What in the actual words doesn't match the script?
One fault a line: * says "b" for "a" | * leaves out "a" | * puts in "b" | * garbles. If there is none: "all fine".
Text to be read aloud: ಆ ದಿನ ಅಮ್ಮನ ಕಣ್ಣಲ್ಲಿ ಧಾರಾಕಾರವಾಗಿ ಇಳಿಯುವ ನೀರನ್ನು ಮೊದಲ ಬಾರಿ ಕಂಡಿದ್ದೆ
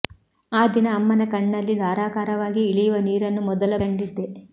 * leaves out "ಬಾರಿ"